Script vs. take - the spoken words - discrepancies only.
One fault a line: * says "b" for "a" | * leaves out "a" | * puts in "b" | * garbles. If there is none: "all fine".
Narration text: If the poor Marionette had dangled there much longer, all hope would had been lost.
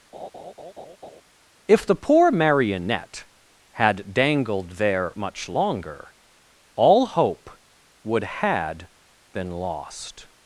all fine